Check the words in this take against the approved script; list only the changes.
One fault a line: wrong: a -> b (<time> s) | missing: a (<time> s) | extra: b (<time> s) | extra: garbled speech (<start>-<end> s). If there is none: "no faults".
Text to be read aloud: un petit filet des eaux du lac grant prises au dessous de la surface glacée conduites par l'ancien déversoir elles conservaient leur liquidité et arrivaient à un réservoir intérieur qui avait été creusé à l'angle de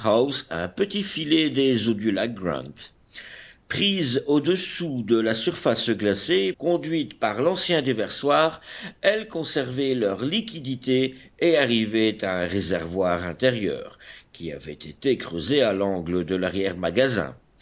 no faults